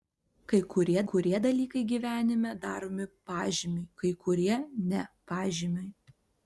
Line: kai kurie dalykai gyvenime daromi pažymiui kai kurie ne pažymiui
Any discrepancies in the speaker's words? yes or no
yes